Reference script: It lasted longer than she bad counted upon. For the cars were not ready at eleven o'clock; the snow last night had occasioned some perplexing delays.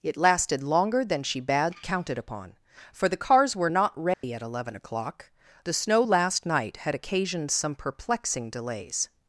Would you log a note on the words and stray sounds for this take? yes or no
yes